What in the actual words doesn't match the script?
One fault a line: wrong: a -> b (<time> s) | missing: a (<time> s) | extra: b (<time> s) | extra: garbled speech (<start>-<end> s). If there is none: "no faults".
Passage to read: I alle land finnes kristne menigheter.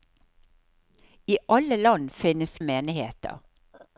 missing: kristne (2.6 s)